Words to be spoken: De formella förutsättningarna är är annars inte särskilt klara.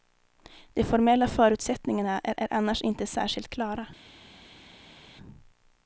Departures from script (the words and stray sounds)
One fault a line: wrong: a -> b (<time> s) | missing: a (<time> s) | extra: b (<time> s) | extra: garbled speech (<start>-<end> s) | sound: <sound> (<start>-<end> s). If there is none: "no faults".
no faults